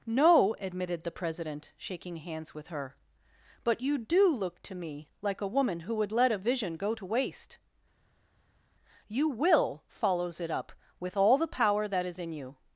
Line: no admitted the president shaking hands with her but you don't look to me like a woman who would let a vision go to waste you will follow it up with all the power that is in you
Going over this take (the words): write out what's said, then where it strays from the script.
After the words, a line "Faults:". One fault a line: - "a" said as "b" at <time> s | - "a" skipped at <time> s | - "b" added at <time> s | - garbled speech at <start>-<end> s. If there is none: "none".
no admitted the president shaking hands with her but you do look to me like a woman who would let a vision go to waste you will follows it up with all the power that is in you
Faults:
- "don't" said as "do" at 4.0 s
- "follow" said as "follows" at 9.9 s